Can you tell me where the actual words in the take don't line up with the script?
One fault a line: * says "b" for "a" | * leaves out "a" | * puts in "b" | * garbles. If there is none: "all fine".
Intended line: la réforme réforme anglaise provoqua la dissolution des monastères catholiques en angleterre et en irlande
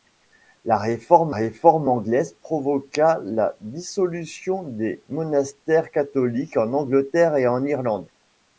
all fine